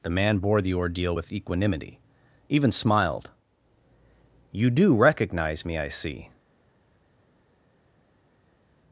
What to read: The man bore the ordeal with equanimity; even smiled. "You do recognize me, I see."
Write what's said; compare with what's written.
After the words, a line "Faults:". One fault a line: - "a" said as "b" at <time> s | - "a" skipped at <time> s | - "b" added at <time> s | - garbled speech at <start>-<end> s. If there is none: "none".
The man bore the ordeal with equanimity; even smiled. "You do recognize me, I see."
Faults:
none